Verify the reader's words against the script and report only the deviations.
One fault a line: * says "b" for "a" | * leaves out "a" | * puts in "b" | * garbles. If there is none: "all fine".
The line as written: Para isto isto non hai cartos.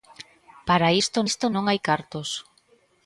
all fine